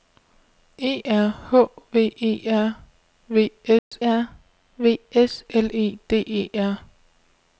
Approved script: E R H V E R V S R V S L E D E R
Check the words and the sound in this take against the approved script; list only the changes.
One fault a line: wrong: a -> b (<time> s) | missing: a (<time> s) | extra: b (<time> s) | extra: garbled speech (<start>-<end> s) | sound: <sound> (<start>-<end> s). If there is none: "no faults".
sound: dropout (3.8-3.9 s)